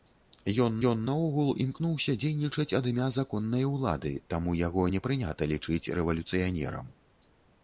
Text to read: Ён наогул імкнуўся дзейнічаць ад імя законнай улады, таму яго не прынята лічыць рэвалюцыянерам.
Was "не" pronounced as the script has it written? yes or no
yes